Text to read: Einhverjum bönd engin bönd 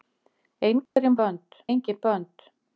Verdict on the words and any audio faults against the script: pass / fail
fail